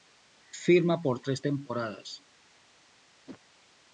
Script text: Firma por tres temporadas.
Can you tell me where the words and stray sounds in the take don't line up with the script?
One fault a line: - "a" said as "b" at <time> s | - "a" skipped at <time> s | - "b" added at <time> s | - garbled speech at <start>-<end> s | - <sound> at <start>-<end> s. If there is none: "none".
- whoosh at 3.3-3.4 s